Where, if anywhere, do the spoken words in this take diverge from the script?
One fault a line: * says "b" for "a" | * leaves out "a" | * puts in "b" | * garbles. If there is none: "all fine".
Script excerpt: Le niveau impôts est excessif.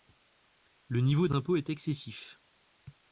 all fine